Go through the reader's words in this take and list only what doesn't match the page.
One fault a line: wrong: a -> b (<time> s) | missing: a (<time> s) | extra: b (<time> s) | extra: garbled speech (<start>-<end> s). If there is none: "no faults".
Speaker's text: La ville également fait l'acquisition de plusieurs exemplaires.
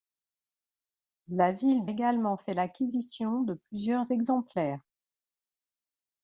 no faults